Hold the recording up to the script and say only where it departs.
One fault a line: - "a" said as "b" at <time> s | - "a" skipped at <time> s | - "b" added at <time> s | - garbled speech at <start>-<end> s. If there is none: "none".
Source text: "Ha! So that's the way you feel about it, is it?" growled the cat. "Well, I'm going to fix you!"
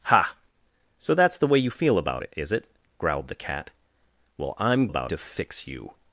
- "going" said as "about" at 4.9 s